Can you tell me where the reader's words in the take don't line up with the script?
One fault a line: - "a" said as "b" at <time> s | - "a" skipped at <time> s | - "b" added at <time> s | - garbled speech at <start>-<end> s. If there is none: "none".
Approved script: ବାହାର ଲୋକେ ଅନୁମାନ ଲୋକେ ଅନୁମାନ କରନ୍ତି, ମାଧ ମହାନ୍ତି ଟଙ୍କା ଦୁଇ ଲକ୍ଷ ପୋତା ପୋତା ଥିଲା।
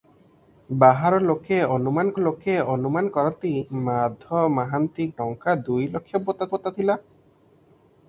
none